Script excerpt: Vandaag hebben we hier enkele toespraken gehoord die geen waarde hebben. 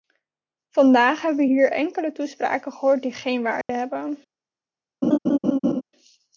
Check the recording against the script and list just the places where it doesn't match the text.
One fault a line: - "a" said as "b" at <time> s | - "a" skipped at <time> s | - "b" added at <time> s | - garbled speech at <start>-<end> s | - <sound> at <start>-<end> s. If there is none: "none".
- dropout at 3.6-3.7 s
- laugh at 5.0-5.8 s